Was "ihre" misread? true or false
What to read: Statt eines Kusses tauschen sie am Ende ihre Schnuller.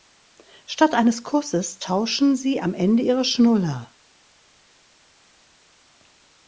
false